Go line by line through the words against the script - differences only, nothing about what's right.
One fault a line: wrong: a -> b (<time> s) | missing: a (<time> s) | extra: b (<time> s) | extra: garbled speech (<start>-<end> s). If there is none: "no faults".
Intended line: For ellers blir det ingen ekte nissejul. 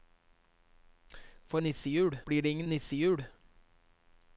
wrong: ellers -> nissejul (1.6 s)
missing: ekte (2.7 s)